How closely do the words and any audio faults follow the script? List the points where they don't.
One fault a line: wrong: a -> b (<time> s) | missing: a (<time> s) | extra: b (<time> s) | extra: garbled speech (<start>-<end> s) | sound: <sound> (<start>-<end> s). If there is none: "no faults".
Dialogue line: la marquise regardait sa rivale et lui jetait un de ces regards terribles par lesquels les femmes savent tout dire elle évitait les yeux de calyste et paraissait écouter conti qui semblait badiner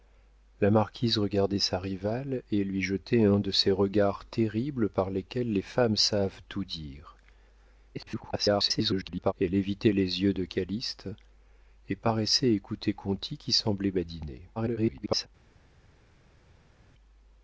extra: garbled speech (7.9-9.3 s)
extra: garbled speech (14.6-15.3 s)